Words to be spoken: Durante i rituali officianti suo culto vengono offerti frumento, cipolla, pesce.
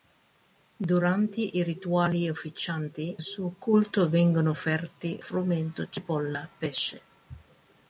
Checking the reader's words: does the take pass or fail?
pass